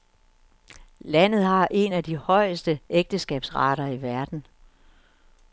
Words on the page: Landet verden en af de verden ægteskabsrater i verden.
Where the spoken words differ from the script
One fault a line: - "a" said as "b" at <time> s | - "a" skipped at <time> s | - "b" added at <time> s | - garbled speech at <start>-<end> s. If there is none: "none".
- "verden" said as "har" at 1.4 s
- "verden" said as "højeste" at 2.2 s